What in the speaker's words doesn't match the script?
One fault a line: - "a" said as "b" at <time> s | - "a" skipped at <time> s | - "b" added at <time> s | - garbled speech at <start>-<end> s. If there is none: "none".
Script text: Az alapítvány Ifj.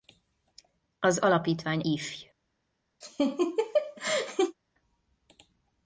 none